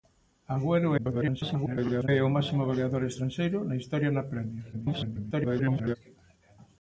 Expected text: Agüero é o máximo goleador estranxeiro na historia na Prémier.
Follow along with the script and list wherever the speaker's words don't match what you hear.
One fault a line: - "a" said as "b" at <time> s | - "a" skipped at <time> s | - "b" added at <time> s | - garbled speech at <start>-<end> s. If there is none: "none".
- garbled speech at 1.0-2.1 s
- garbled speech at 4.7-6.0 s